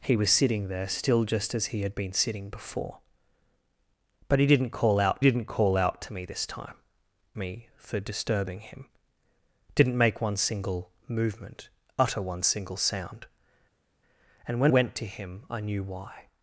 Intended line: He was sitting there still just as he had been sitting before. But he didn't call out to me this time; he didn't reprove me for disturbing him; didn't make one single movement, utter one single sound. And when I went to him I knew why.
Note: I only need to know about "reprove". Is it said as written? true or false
false